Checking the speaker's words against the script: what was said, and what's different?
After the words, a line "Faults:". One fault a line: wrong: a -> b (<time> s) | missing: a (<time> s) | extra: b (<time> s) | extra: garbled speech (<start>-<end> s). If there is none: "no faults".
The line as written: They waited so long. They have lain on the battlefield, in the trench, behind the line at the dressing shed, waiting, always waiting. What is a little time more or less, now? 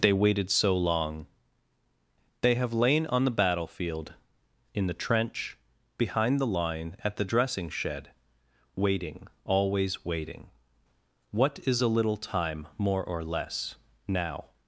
They waited so long. They have lain on the battlefield, in the trench, behind the line at the dressing shed, waiting, always waiting. What is a little time more or less, now?
Faults:
no faults